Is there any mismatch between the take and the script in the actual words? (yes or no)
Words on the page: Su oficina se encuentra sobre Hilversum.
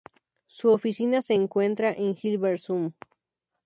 yes